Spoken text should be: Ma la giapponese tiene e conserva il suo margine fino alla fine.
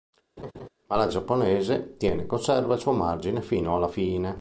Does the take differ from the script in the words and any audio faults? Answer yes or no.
yes